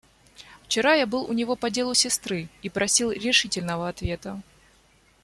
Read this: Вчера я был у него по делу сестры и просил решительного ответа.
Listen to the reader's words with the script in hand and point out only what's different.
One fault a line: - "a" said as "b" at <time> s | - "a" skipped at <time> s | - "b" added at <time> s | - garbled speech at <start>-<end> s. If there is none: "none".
none